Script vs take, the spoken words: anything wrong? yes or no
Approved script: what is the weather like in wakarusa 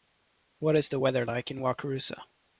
no